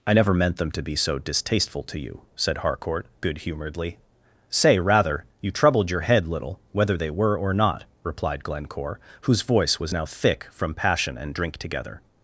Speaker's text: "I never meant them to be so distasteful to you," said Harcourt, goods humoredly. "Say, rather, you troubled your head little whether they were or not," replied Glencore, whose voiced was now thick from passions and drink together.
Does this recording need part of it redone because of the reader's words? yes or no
yes